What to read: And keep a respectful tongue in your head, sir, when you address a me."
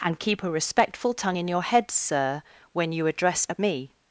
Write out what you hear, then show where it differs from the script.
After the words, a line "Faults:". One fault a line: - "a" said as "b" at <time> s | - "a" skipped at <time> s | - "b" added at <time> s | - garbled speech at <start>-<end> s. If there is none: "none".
And keep a respectful tongue in your head, sir, when you address a me."
Faults:
none